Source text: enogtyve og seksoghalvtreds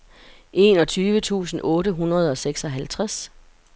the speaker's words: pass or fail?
fail